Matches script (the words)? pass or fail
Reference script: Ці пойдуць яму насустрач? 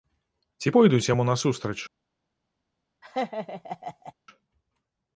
pass